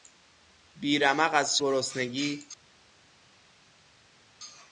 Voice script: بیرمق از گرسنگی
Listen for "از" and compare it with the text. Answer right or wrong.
right